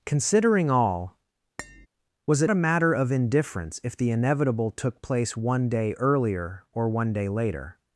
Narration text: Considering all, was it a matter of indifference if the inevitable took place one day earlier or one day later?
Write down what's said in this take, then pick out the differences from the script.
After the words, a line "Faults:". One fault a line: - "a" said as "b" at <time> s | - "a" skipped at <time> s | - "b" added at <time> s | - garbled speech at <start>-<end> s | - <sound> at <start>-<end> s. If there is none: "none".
Considering all, was it a matter of indifference if the inevitable took place one day earlier or one day later?
Faults:
- tap at 1.6-1.9 s